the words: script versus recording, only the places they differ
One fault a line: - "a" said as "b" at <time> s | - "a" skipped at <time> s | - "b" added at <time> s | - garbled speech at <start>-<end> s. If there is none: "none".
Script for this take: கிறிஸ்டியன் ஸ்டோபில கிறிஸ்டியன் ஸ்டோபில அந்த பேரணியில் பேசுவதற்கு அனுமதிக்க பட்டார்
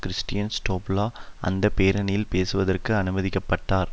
- "கிறிஸ்டியன் ஸ்டோபில" skipped at 1.0 s